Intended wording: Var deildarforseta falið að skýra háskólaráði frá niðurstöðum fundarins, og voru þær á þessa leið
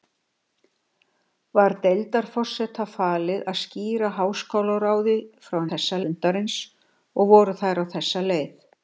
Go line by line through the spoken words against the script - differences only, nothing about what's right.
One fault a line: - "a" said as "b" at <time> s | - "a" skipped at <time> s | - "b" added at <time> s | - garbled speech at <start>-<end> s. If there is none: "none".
- "niðurstöðum" said as "þessa" at 5.7 s